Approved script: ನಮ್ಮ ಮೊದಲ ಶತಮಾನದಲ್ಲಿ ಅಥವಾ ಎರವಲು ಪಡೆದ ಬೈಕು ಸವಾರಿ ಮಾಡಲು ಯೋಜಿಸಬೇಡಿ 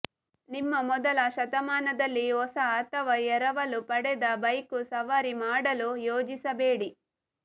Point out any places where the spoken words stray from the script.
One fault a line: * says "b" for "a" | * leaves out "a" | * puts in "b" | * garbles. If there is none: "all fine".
* says "ನಿಮ್ಮ" for "ನಮ್ಮ"
* puts in "ಹೊಸ"